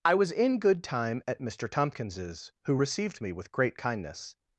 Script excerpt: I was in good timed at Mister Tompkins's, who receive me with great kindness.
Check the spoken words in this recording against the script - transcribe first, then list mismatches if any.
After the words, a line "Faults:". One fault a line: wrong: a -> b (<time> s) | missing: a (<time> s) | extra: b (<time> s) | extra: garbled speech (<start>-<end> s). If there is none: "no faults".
I was in good time at Mister Tompkins's, who received me with great kindness.
Faults:
wrong: timed -> time (0.8 s)
wrong: receive -> received (2.7 s)